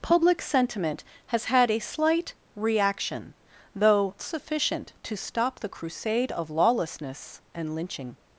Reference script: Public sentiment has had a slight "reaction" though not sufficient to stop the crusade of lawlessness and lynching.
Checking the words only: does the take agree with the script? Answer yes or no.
no